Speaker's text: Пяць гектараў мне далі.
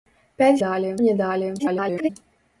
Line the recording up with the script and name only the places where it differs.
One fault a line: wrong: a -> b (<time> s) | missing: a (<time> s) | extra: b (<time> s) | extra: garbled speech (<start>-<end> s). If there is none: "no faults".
wrong: гектараў -> далі (0.6 s)
extra: garbled speech (1.6-2.1 s)